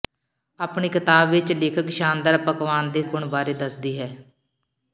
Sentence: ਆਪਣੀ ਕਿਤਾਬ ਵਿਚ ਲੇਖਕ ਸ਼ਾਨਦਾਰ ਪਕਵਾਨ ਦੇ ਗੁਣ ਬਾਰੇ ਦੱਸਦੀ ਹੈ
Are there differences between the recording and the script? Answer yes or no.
no